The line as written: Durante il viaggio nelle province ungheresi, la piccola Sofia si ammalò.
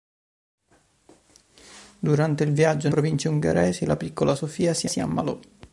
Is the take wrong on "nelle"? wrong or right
wrong